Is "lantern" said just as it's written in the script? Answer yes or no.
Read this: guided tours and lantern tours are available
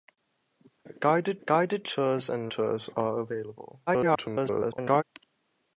no